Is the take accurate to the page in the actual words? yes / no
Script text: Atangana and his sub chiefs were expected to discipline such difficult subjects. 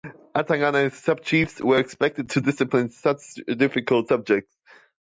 yes